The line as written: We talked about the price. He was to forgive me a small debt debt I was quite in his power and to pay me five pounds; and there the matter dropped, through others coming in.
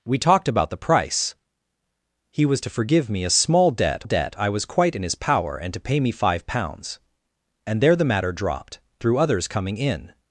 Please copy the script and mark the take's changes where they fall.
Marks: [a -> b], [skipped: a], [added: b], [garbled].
We talked about the price. He was to forgive me a small debt debt I was quite in his power and to pay me five pounds; and there the matter dropped, through others coming in.